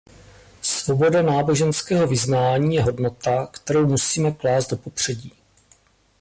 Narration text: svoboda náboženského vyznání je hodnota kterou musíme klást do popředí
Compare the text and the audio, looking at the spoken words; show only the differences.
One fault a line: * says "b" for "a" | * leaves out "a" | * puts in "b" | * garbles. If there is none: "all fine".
all fine